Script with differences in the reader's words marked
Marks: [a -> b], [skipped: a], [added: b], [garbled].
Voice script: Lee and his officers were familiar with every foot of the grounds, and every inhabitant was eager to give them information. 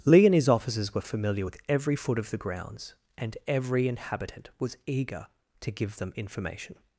Lee and his officers were familiar with every foot of the grounds, and every inhabitant was eager to give them information.